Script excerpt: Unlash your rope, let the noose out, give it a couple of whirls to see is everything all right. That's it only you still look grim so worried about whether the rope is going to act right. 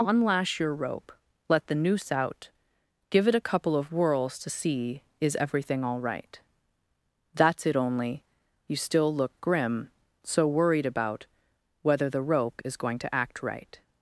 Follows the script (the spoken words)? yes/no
yes